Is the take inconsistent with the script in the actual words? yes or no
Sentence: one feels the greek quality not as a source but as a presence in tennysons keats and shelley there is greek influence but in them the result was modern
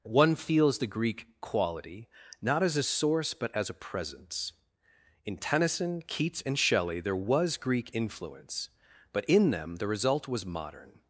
yes